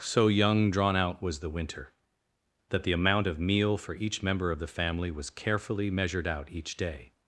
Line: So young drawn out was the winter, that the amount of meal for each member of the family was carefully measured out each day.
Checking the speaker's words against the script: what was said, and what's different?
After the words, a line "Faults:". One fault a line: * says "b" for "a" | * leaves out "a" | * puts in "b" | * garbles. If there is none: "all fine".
So young drawn out was the winter, that the amount of meal for each member of the family was carefully measured out each day.
Faults:
all fine